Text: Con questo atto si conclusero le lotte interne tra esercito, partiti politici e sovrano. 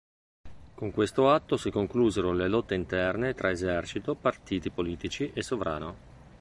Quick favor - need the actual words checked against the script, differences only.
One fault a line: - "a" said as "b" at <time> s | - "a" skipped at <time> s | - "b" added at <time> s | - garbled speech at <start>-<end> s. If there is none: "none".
none